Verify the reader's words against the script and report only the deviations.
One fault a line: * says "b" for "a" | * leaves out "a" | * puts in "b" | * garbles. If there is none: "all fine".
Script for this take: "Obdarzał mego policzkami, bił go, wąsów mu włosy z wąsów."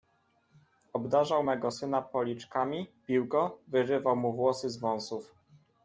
* puts in "syna"
* says "wyrywał" for "wąsów"